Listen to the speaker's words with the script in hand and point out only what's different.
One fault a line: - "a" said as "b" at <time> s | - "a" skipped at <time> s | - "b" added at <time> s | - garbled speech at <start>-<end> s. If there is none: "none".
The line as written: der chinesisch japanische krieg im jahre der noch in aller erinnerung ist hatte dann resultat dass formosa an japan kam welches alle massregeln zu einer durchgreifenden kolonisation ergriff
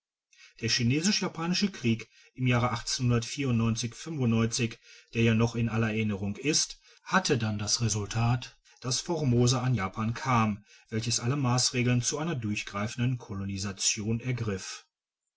- "ja" added at 5.2 s
- "das" added at 7.6 s